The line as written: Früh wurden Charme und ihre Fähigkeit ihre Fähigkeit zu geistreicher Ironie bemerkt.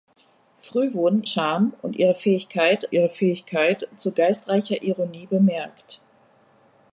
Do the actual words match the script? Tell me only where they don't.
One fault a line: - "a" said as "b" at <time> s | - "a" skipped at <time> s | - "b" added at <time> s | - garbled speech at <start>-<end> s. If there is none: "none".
none